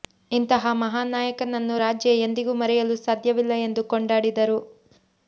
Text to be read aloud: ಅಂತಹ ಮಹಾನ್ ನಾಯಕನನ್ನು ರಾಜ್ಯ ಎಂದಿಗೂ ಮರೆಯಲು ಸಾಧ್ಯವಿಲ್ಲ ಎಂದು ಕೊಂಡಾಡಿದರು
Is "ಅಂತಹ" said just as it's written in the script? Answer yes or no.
no